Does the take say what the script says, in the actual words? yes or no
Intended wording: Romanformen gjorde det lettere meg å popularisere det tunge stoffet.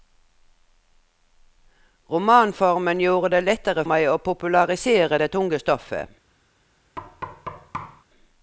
yes